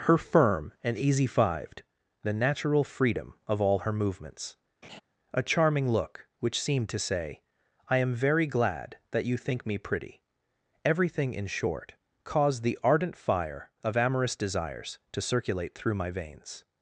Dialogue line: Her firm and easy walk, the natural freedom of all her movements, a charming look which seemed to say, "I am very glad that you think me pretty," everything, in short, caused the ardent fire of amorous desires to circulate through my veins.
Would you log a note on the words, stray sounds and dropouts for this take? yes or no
yes